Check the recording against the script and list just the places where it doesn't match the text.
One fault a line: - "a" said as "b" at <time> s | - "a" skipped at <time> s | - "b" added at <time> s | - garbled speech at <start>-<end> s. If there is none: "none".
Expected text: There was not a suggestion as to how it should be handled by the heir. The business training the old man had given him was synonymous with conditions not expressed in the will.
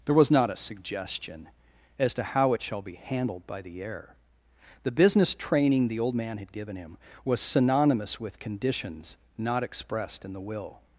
- "should" said as "shall" at 2.6 s